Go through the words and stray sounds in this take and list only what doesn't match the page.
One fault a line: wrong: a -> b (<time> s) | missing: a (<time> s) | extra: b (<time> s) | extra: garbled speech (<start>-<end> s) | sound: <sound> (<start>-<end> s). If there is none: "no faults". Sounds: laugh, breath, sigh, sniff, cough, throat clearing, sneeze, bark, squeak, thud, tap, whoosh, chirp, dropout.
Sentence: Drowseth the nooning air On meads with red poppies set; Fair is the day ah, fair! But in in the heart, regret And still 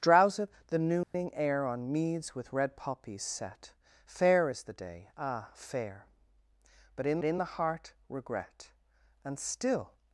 sound: dropout (1.0-1.1 s)